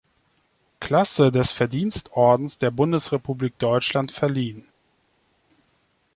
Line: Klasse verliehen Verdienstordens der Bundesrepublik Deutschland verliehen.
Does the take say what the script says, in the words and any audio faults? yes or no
no